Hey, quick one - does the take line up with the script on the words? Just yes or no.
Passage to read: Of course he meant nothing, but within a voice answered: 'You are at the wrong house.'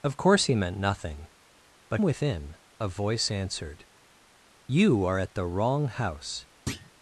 yes